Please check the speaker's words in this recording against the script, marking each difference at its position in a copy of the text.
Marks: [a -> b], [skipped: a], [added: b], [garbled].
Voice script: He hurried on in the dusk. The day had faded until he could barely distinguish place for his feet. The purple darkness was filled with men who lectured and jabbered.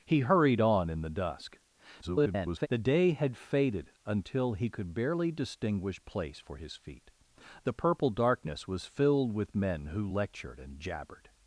He hurried on in the dusk. [garbled] The day had faded until he could barely distinguish place for his feet. The purple darkness was filled with men who lectured and jabbered.